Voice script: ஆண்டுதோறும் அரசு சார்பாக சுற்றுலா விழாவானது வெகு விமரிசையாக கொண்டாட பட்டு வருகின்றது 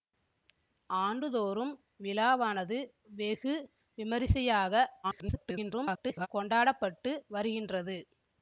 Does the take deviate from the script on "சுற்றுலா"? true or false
true